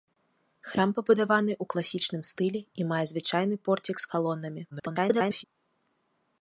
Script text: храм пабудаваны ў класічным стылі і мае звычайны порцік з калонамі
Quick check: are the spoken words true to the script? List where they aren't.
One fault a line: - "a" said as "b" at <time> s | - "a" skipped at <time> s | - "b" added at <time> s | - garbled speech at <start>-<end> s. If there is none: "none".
- garbled speech at 4.7-5.4 s